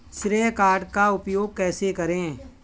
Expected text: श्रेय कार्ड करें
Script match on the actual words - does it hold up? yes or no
no